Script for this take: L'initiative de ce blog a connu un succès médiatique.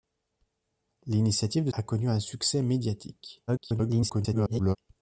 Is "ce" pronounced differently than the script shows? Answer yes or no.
yes